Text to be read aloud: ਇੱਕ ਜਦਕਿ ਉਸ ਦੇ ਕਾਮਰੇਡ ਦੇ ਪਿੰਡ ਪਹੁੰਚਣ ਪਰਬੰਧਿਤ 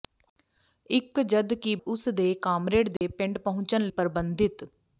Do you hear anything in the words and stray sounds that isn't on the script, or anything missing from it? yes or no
yes